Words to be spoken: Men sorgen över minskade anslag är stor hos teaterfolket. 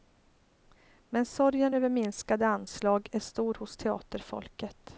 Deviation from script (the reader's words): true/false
false